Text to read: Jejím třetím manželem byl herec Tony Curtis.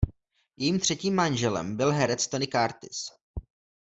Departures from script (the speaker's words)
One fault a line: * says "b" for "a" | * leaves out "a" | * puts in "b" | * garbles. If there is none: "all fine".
all fine